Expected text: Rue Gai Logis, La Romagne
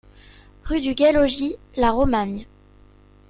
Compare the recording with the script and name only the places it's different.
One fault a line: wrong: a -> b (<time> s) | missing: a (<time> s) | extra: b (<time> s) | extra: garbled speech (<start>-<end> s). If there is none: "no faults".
extra: du (0.8 s)